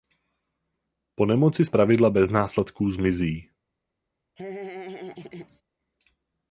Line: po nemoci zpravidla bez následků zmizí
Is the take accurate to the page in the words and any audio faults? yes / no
no